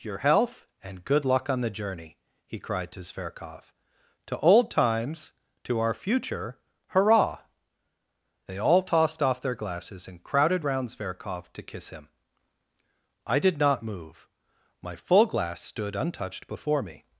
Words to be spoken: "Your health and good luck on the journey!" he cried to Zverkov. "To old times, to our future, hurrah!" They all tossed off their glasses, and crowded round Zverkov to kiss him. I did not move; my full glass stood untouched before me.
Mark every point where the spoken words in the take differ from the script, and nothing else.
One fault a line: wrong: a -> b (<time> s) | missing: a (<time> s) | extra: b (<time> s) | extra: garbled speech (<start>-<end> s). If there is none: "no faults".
no faults